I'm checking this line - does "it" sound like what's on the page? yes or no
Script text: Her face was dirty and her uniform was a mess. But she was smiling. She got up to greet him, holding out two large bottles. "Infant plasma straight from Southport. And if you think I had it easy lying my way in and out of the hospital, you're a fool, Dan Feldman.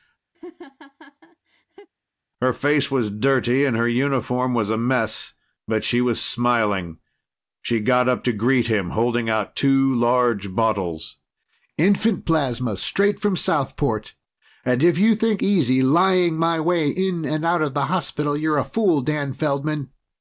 no